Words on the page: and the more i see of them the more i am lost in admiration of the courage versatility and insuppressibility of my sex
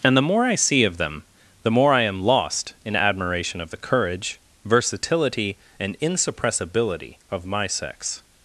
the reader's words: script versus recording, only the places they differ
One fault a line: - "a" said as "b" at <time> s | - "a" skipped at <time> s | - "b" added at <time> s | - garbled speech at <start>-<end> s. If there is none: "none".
none